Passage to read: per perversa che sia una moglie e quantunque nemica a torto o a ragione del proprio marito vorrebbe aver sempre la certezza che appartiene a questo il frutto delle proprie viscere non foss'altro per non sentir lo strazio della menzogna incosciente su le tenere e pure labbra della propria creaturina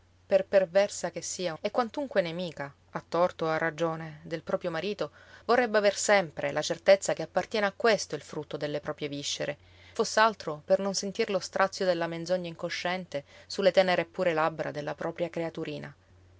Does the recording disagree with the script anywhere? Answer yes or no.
yes